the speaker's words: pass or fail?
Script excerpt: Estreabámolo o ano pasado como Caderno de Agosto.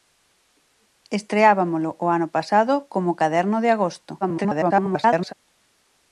fail